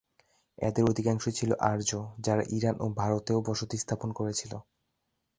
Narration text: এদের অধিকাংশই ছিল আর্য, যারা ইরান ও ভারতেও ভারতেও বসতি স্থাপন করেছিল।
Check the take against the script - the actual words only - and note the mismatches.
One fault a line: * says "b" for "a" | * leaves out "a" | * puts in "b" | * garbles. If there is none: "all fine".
* leaves out "ভারতেও"